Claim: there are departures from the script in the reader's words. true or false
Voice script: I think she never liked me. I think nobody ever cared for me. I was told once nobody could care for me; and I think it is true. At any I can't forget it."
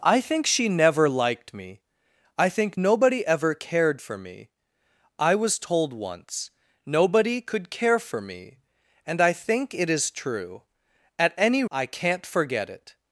false